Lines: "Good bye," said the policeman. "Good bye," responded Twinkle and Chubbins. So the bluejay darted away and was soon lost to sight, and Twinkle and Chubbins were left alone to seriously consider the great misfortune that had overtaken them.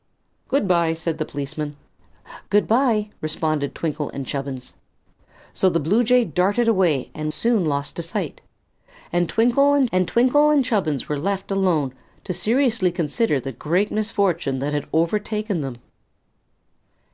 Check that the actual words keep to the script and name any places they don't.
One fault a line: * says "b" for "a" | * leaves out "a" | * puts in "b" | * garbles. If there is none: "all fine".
* leaves out "was"
* puts in "and Twinkle and"